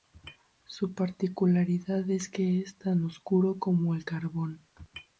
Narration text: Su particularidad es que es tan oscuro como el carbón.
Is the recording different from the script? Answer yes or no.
no